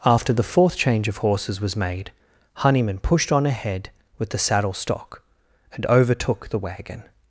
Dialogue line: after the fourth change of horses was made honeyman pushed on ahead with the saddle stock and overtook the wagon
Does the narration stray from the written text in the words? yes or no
no